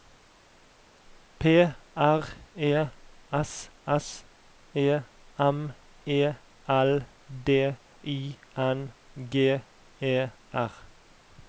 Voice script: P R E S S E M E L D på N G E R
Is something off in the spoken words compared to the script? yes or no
yes